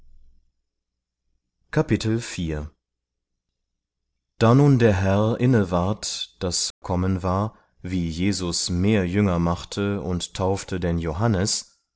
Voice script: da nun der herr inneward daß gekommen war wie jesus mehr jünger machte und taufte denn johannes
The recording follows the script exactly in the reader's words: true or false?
true